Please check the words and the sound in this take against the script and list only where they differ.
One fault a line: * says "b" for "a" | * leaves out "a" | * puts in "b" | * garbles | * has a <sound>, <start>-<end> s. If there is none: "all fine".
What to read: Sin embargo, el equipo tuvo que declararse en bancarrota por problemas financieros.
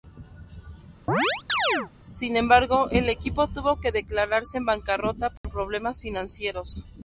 * has a chirp, 1.1-1.9 s
* has a dropout, 5.4-5.4 s